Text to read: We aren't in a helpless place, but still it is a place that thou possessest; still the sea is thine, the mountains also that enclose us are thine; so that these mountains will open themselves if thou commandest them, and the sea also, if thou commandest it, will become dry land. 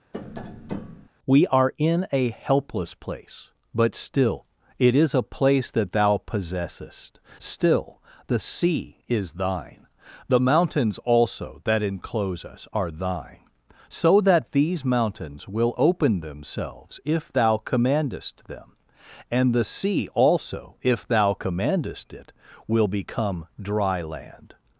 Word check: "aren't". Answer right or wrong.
wrong